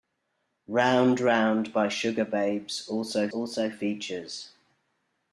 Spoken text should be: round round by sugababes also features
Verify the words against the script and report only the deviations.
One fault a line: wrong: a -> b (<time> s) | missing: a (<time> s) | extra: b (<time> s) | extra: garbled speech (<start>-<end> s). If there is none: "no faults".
extra: also (3.3 s)